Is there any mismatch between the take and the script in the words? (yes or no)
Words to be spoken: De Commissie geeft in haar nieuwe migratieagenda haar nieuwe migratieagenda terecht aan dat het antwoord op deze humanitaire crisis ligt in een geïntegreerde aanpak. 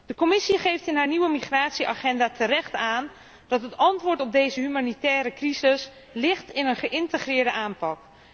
yes